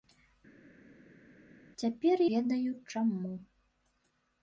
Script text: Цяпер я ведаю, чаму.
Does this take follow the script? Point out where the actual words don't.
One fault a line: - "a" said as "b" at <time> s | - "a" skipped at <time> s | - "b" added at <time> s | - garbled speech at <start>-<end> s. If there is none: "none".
- "я" skipped at 2.2 s